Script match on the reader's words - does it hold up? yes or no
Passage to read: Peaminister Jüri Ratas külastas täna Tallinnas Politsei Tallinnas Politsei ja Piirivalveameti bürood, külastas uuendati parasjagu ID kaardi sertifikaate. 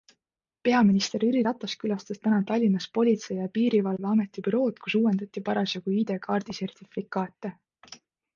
no